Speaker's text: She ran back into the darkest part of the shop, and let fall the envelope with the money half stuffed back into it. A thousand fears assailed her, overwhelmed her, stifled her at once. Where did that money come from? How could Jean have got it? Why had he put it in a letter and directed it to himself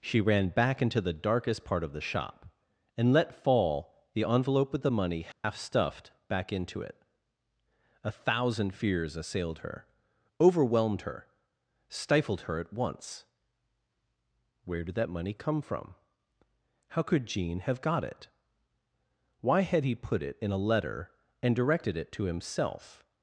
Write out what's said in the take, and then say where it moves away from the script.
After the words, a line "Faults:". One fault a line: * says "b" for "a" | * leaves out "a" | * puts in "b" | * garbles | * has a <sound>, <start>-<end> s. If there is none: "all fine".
She ran back into the darkest part of the shop, and let fall the envelope with the money half stuffed back into it. A thousand fears assailed her, overwhelmed her, stifled her at once. Where did that money come from? How could Jean have got it? Why had he put it in a letter and directed it to himself
Faults:
* has a dropout, 5.3-5.4 s